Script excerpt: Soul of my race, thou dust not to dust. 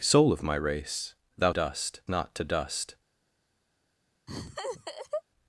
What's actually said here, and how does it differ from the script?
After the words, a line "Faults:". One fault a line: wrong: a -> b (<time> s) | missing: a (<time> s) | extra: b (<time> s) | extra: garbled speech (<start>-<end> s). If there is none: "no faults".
Soul of my race, thou dust not to dust.
Faults:
no faults